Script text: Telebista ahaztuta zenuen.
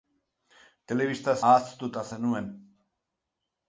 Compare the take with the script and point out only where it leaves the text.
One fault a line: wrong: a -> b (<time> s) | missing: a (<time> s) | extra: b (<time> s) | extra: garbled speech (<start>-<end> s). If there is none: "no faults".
no faults